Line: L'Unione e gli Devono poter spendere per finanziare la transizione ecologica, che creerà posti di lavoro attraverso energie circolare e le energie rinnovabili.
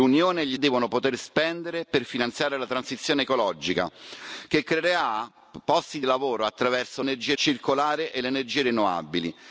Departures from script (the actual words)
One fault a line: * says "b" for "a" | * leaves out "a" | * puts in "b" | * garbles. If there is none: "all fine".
all fine